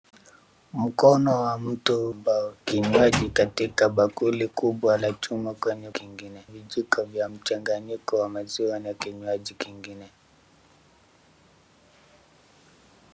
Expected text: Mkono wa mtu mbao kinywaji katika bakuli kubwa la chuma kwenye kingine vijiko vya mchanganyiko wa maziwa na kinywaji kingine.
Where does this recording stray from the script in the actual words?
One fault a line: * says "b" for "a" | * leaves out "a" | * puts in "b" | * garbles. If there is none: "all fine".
all fine